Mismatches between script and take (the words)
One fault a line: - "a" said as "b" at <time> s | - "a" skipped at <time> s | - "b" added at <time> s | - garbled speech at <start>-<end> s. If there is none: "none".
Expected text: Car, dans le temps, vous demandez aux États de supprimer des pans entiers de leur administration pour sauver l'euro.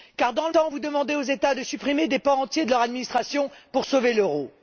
none